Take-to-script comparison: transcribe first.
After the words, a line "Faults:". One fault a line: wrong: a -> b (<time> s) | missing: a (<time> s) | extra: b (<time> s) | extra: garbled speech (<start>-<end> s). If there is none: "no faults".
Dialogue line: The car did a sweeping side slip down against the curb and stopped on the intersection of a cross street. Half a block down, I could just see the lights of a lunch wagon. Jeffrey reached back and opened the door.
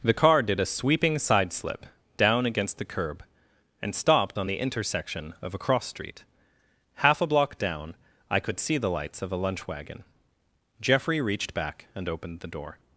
The car did a sweeping side slip down against the curb and stopped on the intersection of a cross street. Half a block down, I could see the lights of a lunch wagon. Jeffrey reached back and opened the door.
Faults:
missing: just (8.6 s)